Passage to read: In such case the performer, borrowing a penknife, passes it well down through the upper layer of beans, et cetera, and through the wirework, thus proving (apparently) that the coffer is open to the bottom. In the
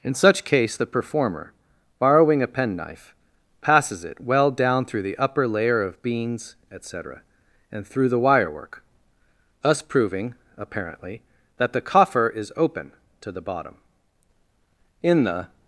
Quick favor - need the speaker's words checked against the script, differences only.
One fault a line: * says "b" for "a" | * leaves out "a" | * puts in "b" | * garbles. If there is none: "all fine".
all fine